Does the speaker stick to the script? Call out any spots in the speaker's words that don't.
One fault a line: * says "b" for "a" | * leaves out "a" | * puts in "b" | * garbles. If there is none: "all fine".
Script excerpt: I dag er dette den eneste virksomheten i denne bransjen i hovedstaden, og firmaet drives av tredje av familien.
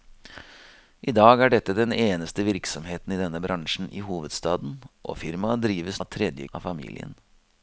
all fine